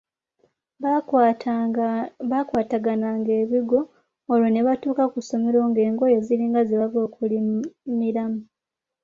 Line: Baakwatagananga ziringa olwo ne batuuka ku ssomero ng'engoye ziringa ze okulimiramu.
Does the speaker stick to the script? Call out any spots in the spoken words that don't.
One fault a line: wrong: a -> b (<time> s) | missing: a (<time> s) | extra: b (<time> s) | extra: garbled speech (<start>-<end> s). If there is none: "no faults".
wrong: ziringa -> ebigwo (3.4 s)
extra: bava (6.8 s)